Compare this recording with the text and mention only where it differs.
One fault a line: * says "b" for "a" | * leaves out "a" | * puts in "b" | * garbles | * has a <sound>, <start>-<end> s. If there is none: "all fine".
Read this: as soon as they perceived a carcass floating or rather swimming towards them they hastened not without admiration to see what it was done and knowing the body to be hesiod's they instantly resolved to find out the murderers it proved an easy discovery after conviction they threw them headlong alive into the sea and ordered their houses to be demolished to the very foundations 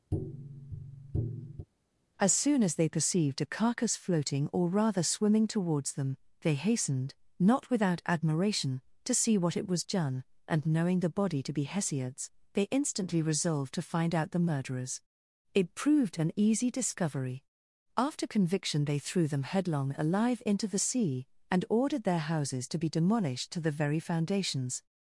* has a tap, 0.1-1.7 s